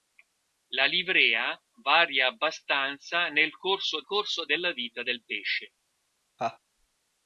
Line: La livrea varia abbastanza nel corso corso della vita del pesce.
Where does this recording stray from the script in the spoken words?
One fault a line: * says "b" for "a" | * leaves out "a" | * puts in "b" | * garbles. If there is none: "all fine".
all fine